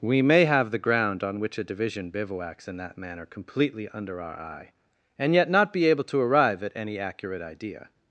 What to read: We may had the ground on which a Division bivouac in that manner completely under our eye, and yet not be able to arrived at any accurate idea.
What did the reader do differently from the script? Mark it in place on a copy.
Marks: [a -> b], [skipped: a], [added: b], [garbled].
We may [had -> have] the ground on which a Division [bivouac -> bivouacs] in that manner completely under our eye, and yet not be able to [arrived -> arrive] at any accurate idea.